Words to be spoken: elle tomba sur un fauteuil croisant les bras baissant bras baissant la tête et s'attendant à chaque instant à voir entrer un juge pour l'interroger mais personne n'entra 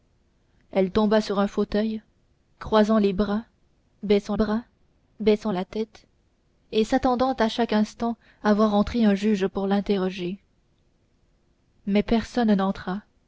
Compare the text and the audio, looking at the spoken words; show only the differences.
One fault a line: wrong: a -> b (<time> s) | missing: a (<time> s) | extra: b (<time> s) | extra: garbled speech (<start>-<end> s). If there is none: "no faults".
no faults